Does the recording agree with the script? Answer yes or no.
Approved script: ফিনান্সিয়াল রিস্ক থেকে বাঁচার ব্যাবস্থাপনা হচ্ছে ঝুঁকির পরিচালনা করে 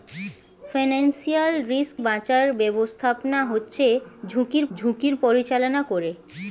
no